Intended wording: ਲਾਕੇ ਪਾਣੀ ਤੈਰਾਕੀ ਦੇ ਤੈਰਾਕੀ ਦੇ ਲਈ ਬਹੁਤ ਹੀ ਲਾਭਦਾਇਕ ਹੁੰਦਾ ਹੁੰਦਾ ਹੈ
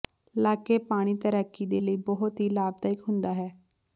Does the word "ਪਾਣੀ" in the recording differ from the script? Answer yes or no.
no